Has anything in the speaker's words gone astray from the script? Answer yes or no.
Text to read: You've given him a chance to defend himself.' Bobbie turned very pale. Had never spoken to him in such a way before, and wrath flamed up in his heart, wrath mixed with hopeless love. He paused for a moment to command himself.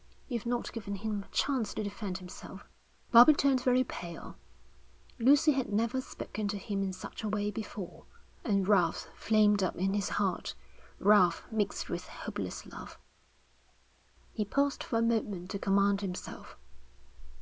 yes